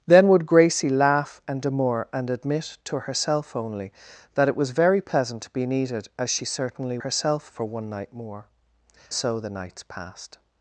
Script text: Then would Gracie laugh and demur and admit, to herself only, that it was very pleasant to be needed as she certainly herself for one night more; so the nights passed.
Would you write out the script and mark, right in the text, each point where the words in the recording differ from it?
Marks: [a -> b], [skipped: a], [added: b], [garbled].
Then would Gracie laugh and demur and admit, to herself only, that it was very pleasant to be needed as she certainly herself for one night more; so the nights passed.